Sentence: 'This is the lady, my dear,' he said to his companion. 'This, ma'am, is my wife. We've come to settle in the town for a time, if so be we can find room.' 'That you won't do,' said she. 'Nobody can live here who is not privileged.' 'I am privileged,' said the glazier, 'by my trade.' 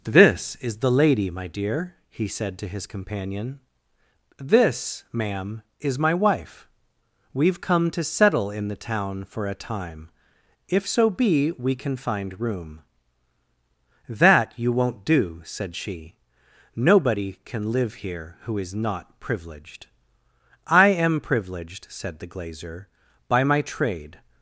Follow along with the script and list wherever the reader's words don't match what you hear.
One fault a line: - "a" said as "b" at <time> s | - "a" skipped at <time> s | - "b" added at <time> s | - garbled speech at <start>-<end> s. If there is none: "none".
none